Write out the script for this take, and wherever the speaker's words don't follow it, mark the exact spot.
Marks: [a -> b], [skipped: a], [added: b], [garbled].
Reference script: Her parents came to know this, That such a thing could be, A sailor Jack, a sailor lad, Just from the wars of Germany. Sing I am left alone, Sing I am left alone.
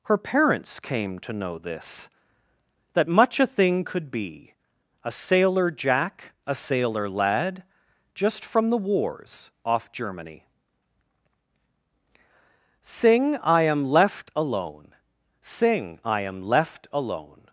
Her parents came to know this, That [such -> much] a thing could be, A sailor Jack, a sailor lad, Just from the wars [of -> off] Germany. Sing I am left alone, Sing I am left alone.